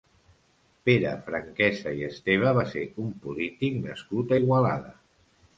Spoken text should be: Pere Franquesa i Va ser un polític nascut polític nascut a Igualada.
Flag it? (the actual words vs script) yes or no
yes